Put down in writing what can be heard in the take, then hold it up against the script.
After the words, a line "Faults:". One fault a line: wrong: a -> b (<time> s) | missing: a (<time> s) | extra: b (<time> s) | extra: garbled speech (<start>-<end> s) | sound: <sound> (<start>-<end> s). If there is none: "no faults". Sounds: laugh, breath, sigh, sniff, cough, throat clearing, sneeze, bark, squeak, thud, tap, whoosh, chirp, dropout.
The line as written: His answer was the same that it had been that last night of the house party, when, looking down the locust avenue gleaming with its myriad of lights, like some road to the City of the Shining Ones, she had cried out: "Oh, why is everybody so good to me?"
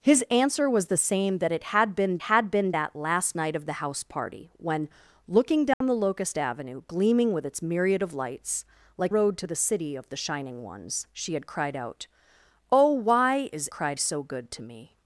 His answer was the same that it had been had been that last night of the house party, when, looking down the locust avenue gleaming with its myriad of lights, like road to the City of the Shining Ones, she had cried out: "Oh, why is cried so good to me?"
Faults:
extra: had been (2.2 s)
sound: dropout (5.7-5.8 s)
missing: some (9.1 s)
wrong: everybody -> cried (13.7 s)